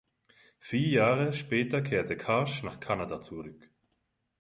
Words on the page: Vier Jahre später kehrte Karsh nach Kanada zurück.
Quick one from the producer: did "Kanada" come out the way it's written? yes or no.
yes